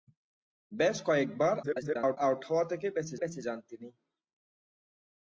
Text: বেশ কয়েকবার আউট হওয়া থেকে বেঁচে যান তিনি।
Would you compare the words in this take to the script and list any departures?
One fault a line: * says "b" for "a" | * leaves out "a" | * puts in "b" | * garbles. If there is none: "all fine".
* garbles
* puts in "বেঁচে"